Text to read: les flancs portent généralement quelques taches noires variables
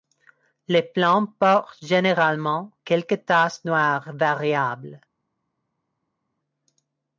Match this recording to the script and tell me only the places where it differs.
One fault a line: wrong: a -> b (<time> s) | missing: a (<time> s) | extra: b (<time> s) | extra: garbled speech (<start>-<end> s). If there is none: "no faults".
no faults